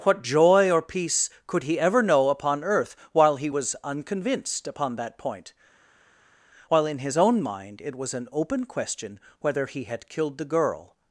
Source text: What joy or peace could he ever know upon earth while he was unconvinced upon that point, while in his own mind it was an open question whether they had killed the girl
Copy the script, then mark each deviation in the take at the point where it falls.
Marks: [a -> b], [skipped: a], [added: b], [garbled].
What joy or peace could he ever know upon earth while he was unconvinced upon that point, while in his own mind it was an open question whether [they -> he] had killed the girl